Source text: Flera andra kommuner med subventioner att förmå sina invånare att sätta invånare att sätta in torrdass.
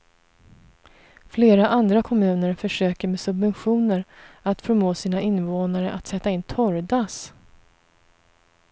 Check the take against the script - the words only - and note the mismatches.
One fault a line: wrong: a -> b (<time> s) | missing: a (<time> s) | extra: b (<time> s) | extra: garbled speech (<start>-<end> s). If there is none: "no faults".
extra: försöker (2.5 s)
missing: invånare att sätta (6.3 s)